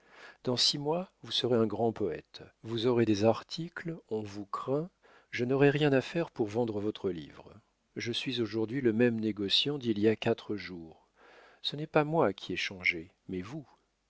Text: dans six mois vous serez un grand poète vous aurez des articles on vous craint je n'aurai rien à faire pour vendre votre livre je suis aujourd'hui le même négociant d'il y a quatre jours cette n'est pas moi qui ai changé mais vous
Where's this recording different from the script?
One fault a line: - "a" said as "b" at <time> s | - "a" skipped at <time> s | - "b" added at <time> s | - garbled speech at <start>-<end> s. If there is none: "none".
- "cette" said as "ce" at 11.6 s